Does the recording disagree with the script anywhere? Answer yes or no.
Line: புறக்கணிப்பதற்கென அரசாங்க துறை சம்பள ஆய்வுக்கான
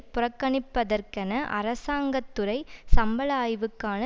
no